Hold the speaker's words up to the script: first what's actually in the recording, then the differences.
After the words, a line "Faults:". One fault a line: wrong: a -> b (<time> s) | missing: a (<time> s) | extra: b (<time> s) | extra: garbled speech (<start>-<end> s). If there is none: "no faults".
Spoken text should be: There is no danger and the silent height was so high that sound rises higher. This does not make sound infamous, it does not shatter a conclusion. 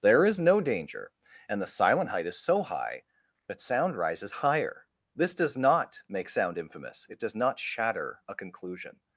There is no danger and the silent height is so high that sound rises higher. This does not make sound infamous, it does not shatter a conclusion.
Faults:
wrong: was -> is (2.2 s)